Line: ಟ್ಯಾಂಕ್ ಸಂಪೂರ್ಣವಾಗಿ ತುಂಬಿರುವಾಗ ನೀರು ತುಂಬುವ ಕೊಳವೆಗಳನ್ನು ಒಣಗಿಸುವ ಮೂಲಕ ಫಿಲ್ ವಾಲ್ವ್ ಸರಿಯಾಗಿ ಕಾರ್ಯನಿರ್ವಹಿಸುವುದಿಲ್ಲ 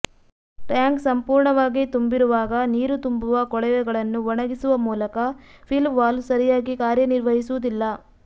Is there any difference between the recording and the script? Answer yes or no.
no